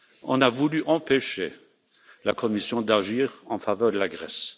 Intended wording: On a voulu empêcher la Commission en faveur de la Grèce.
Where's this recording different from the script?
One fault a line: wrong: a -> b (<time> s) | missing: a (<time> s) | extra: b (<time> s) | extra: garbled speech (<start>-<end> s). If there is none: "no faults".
extra: d'agir (2.8 s)